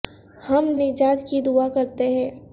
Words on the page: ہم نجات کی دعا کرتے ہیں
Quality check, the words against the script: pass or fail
pass